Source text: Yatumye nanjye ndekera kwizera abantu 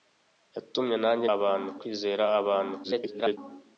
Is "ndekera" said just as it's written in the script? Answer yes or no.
no